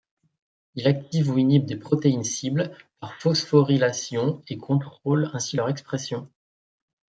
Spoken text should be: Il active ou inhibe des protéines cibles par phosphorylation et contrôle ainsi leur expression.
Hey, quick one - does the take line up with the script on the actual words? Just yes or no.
yes